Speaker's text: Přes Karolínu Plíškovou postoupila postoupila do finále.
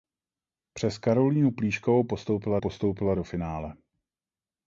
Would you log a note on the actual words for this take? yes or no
no